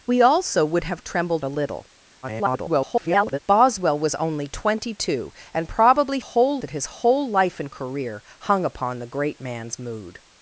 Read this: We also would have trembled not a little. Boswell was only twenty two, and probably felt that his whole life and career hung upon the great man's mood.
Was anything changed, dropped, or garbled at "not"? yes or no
yes